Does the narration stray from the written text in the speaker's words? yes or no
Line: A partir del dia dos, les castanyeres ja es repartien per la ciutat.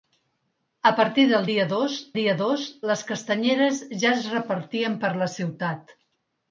yes